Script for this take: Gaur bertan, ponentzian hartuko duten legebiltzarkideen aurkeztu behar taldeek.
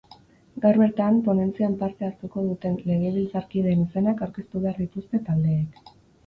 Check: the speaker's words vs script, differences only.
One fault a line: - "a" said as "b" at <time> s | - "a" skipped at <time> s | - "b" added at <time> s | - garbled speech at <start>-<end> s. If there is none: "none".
- "parte" added at 1.8 s
- "izenak" added at 3.9 s
- "dituzte" added at 4.8 s